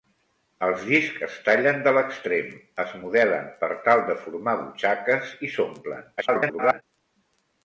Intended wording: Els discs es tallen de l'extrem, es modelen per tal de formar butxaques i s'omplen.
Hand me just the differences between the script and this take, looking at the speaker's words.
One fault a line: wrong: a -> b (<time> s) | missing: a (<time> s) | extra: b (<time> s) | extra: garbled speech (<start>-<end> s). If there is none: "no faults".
extra: garbled speech (6.2-6.8 s)